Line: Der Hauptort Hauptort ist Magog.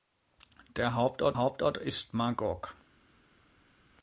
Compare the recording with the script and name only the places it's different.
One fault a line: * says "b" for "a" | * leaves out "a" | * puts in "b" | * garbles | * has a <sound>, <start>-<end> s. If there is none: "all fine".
all fine